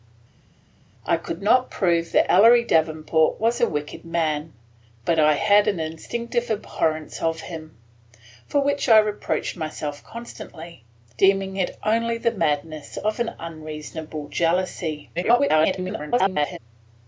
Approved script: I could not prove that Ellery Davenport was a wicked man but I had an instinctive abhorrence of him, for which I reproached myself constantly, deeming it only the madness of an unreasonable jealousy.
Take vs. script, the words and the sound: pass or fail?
fail